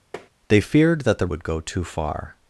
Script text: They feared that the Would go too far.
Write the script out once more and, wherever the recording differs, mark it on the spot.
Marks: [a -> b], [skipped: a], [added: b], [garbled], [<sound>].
[tap] They feared that the Would go too far.